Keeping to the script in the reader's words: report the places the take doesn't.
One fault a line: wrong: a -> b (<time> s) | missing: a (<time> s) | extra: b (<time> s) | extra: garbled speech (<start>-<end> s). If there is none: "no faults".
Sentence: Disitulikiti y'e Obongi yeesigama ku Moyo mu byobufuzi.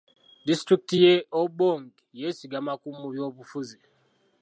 missing: Moyo (2.9 s)